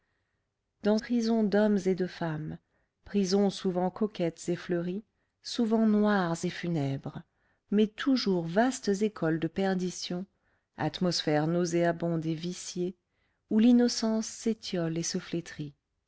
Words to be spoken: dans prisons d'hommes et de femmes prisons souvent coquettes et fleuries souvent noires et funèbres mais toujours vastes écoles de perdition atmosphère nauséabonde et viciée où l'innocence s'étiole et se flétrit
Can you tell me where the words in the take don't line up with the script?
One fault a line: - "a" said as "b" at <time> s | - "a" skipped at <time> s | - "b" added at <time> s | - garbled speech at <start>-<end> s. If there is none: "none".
none